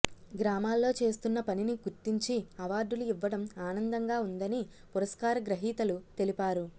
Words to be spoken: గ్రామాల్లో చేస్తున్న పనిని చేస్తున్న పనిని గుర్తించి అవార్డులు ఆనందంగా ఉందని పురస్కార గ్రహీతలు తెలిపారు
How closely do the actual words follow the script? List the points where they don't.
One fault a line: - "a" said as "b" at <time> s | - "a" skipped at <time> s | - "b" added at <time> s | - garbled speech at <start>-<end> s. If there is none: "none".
- "చేస్తున్న పనిని" skipped at 1.7 s
- "ఇవ్వడం" added at 3.0 s